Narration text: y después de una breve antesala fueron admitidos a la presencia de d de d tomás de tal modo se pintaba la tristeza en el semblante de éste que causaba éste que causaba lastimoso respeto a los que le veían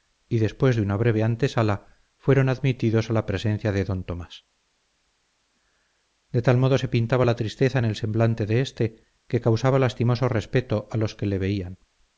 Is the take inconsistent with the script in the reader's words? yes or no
yes